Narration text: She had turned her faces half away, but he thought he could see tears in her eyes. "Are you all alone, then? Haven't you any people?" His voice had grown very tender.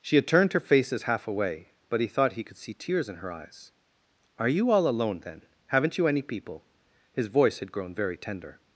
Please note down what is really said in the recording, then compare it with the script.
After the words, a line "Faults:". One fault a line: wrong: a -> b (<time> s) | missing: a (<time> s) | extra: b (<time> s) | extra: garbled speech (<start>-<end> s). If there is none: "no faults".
She had turned her faces half away, but he thought he could see tears in her eyes. "Are you all alone, then? Haven't you any people?" His voice had grown very tender.
Faults:
no faults